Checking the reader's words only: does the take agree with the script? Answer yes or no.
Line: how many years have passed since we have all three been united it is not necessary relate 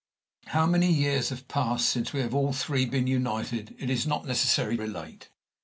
yes